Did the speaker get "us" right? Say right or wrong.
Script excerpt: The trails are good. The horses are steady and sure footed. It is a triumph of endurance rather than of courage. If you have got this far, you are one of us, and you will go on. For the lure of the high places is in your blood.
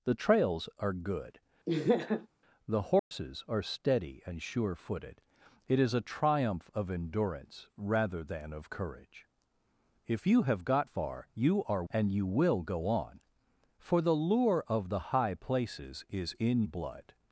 wrong